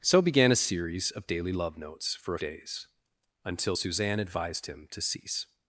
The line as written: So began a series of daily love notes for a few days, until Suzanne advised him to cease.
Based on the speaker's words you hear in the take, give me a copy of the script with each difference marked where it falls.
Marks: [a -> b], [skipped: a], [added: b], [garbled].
So began a series of daily love notes for a [skipped: few] days, until Suzanne advised him to cease.